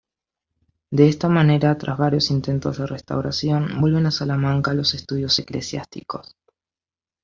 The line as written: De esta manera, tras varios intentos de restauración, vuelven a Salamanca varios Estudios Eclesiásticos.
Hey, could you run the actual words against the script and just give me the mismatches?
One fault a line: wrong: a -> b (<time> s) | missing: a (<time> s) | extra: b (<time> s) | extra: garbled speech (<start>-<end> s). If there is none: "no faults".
wrong: varios -> los (4.7 s)